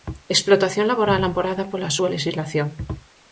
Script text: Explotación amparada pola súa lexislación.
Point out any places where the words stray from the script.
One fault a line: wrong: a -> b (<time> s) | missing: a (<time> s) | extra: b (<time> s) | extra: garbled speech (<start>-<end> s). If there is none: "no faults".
extra: laboral (0.9 s)